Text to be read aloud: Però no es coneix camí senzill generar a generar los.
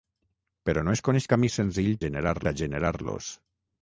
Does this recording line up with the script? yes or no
yes